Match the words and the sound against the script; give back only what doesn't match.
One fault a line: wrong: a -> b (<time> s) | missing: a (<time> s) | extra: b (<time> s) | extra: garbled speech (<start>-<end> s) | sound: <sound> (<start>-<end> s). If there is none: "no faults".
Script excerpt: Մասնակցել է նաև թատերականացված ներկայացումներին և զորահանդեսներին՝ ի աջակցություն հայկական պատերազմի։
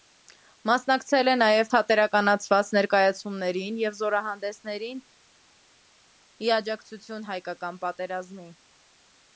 no faults